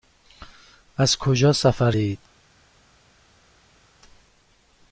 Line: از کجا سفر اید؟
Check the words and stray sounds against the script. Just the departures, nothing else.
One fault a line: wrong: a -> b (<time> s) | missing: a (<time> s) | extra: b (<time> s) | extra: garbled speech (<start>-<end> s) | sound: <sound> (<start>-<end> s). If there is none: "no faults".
no faults